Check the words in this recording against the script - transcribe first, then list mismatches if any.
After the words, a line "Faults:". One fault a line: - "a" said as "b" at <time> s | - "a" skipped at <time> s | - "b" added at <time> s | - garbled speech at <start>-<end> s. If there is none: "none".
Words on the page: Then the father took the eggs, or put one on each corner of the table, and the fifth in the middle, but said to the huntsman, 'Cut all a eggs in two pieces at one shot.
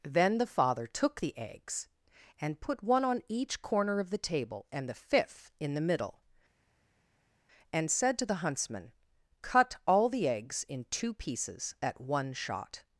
Then the father took the eggs, and put one on each corner of the table, and the fifth in the middle, and said to the huntsman, 'Cut all the eggs in two pieces at one shot.
Faults:
- "or" said as "and" at 2.4 s
- "but" said as "and" at 7.7 s
- "a" said as "the" at 10.1 s